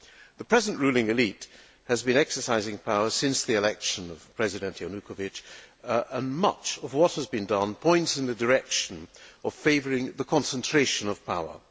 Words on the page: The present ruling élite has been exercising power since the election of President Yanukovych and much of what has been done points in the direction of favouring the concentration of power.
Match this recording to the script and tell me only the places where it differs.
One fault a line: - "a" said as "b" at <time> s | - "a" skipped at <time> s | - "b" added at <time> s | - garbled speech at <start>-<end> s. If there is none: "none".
none